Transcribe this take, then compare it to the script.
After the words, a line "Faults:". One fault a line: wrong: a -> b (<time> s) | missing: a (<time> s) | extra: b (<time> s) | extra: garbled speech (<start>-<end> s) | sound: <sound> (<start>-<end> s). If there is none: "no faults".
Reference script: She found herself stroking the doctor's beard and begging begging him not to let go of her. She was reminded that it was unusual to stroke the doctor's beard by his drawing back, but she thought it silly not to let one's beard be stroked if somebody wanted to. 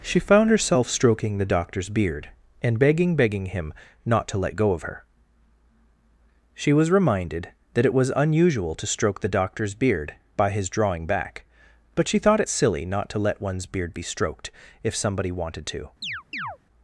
She found herself stroking the doctor's beard and begging begging him not to let go of her. She was reminded that it was unusual to stroke the doctor's beard by his drawing back, but she thought it silly not to let one's beard be stroked if somebody wanted to.
Faults:
sound: chirp (16.0-16.6 s)